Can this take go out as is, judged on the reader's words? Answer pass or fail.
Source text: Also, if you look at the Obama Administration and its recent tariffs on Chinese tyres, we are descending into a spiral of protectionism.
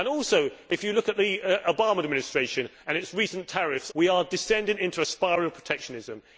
fail